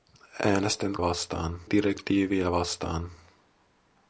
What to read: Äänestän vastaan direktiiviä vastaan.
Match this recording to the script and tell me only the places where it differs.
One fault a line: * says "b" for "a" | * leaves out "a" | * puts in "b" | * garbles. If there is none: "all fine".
all fine